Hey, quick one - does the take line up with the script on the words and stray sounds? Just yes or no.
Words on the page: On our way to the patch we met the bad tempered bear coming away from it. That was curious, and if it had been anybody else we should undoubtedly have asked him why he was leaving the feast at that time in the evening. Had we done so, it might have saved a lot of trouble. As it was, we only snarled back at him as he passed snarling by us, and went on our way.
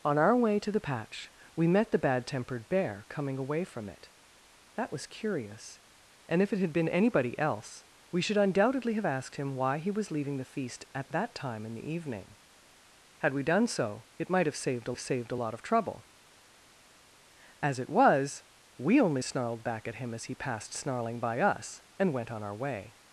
no